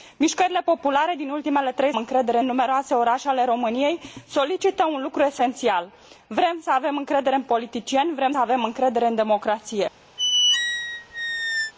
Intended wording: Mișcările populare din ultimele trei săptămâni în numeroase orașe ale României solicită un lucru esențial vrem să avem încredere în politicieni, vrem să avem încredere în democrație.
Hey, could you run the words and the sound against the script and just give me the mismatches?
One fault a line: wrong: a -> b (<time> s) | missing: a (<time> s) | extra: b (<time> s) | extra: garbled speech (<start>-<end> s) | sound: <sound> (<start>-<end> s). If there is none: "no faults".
wrong: săptămâni -> încredere (2.0 s)
missing: să (8.3 s)
sound: squeak (10.2-11.7 s)